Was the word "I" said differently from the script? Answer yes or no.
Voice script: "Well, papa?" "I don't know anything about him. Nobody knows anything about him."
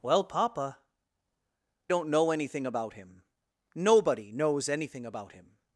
yes